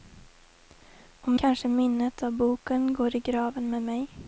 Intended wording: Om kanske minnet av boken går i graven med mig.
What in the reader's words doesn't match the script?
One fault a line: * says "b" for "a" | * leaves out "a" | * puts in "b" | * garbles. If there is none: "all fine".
all fine